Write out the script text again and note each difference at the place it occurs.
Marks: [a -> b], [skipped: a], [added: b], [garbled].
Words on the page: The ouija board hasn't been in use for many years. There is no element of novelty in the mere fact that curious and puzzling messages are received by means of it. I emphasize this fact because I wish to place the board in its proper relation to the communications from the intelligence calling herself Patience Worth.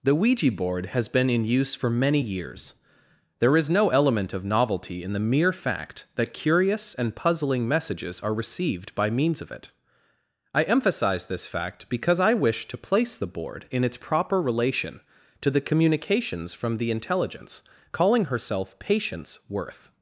The ouija board [hasn't -> has] been in use for many years. There is no element of novelty in the mere fact that curious and puzzling messages are received by means of it. I emphasize this fact because I wish to place the board in its proper relation to the communications from the intelligence calling herself Patience Worth.